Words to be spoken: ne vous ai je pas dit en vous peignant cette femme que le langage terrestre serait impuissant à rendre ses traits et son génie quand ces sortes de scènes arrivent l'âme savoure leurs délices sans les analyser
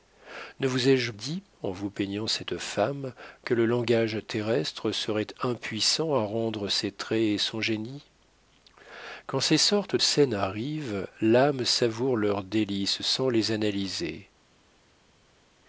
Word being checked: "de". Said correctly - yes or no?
no